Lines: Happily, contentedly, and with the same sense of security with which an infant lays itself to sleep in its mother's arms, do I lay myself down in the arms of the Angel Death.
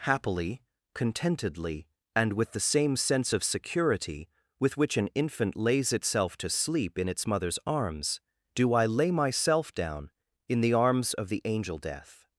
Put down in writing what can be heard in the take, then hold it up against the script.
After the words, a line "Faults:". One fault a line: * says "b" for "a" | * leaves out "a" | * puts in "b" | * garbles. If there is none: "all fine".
Happily, contentedly, and with the same sense of security with which an infant lays itself to sleep in its mother's arms, do I lay myself down in the arms of the Angel Death.
Faults:
all fine